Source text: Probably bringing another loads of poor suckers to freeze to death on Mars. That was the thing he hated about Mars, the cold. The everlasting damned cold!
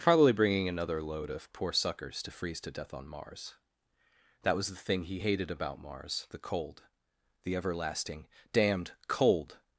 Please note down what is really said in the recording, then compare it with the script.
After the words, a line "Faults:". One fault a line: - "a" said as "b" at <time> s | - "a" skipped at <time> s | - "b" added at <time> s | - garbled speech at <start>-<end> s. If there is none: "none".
Probably bringing another load of poor suckers to freeze to death on Mars. That was the thing he hated about Mars, the cold. The everlasting damned cold!
Faults:
- "loads" said as "load" at 1.0 s